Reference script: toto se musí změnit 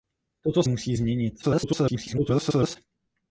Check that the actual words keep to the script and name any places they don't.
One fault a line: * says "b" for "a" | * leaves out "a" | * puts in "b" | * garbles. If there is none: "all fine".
* leaves out "se"
* garbles